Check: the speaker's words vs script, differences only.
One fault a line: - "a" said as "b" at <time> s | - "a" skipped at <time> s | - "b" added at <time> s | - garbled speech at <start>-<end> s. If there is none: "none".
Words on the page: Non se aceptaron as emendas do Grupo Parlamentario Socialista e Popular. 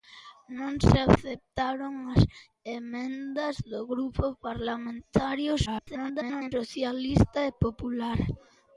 - garbled speech at 5.7-6.5 s